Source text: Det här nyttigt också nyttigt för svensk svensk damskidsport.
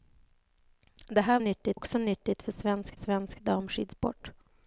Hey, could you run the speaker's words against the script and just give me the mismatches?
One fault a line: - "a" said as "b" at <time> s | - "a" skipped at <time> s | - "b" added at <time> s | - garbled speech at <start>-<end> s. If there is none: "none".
none